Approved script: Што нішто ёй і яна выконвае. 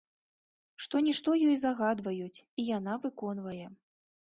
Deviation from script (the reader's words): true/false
true